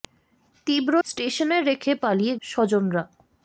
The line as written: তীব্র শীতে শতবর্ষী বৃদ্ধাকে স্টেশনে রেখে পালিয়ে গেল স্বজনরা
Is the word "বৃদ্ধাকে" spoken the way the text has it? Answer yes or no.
no